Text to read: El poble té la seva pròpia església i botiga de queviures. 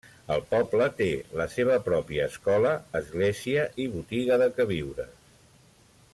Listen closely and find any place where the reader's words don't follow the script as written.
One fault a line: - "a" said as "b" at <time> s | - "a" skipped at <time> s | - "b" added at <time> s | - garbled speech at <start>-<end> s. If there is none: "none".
- "escola" added at 2.3 s